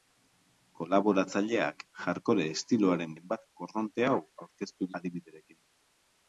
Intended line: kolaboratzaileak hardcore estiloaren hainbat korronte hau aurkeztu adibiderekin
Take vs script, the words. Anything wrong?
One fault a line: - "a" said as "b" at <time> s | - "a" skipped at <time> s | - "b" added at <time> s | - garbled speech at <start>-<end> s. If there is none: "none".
none